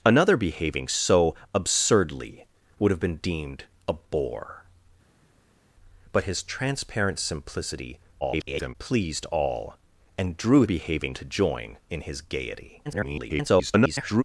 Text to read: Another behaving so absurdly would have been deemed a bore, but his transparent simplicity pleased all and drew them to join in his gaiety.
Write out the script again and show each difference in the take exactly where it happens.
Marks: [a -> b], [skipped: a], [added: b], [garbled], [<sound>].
Another behaving so absurdly would have been deemed a bore, but his transparent simplicity [garbled] pleased all and drew [them -> behaving] to join in his gaiety. [garbled]